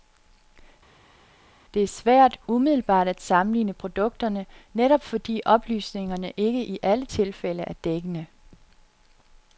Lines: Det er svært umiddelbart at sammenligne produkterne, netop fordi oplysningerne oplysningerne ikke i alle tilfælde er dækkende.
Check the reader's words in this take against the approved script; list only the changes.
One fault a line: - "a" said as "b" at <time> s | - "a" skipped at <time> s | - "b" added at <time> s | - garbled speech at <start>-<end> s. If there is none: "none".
- "oplysningerne" skipped at 6.3 s